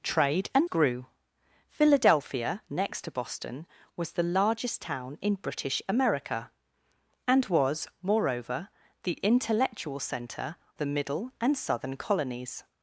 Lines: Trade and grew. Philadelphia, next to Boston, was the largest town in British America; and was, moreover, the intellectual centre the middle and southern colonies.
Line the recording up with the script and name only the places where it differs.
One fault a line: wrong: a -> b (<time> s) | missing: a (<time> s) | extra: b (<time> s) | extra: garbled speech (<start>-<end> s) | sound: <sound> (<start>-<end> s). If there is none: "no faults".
no faults